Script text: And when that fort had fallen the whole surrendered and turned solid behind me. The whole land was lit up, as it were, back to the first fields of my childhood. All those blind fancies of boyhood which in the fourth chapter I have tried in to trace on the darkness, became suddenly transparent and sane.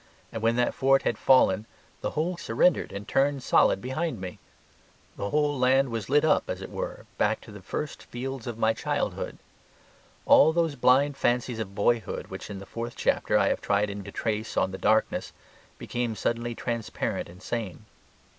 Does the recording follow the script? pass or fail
pass